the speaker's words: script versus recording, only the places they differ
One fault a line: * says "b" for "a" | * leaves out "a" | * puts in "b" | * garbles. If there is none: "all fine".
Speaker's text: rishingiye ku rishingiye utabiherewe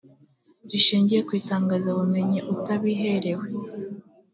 * says "itangazabumenyi" for "rishingiye"